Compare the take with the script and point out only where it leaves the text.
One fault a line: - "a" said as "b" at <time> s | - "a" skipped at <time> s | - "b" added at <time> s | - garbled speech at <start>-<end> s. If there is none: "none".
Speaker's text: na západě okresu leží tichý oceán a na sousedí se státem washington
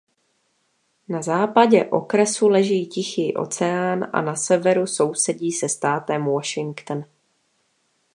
- "severu" added at 4.4 s